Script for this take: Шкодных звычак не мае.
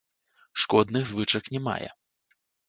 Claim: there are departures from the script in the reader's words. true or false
false